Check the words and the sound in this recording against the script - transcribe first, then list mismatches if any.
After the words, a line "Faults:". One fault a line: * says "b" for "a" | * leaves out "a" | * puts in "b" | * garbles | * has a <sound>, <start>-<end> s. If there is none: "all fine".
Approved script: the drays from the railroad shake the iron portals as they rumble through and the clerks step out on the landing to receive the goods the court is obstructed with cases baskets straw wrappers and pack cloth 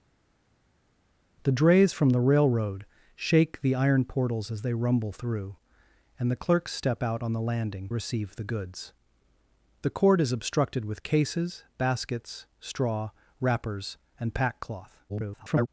the drays from the railroad shake the iron portals as they rumble through and the clerks step out on the landing receive the goods the court is obstructed with cases baskets straw wrappers and pack cloth [garbled]
Faults:
* leaves out "to"
* garbles